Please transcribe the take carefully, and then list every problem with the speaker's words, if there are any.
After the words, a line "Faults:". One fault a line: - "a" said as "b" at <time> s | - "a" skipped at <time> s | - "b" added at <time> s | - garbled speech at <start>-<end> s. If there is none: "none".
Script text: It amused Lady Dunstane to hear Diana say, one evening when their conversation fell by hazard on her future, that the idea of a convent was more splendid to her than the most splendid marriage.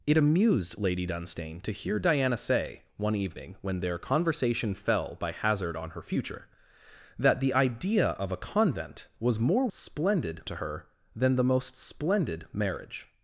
It amused Lady Dunstane to hear Diana say, one evening when their conversation fell by hazard on her future, that the idea of a convent was more splendid to her than the most splendid marriage.
Faults:
none